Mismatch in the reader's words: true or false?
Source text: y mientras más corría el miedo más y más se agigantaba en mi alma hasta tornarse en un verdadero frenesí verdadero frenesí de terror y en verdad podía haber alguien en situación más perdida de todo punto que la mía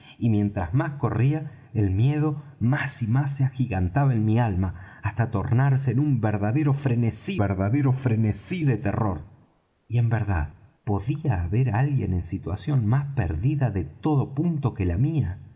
false